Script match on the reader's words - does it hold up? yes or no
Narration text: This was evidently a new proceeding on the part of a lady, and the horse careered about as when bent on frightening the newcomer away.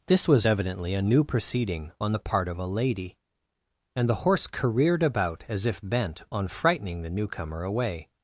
no